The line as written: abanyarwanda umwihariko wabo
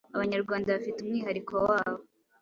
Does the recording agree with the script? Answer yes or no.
no